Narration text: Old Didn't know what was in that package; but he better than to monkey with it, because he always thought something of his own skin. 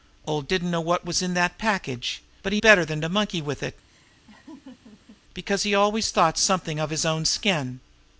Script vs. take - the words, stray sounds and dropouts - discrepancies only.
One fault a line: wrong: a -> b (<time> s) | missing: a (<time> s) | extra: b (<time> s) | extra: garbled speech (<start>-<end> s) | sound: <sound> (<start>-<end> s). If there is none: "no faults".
sound: laugh (3.9-5.2 s)